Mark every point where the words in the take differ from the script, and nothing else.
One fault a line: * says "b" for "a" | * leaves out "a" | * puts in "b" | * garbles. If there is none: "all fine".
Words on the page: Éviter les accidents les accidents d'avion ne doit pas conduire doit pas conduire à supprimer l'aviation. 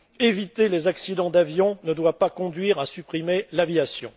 * leaves out "les accidents"
* leaves out "doit pas conduire"